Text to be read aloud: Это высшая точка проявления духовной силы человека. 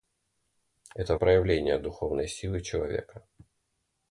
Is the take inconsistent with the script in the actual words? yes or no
yes